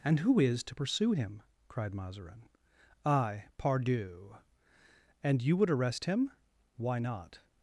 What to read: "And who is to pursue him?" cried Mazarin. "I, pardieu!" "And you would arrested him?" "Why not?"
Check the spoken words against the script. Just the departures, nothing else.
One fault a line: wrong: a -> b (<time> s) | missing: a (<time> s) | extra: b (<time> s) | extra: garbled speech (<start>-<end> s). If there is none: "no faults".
wrong: arrested -> arrest (5.7 s)